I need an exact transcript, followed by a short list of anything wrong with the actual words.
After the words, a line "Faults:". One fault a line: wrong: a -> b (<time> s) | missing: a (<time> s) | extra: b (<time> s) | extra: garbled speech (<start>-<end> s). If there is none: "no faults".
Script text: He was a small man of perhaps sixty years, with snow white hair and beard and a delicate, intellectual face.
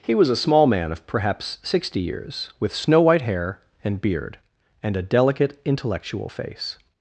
He was a small man of perhaps sixty years, with snow white hair and beard and a delicate, intellectual face.
Faults:
no faults